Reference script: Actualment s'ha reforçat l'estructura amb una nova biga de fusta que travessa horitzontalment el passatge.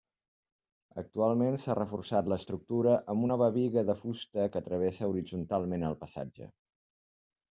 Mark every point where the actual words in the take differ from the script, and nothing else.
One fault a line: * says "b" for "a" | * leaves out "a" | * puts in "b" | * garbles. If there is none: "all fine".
* leaves out "una"